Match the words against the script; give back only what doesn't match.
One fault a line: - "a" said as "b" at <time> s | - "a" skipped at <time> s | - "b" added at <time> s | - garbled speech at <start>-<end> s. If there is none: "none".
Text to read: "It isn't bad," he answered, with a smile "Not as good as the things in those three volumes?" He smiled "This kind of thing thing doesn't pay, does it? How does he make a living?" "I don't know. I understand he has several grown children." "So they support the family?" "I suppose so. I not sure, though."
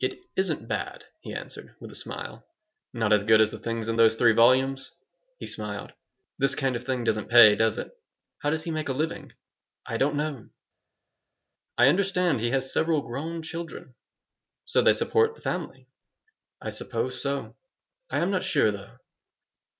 - "thing" skipped at 7.0 s
- "am" added at 18.2 s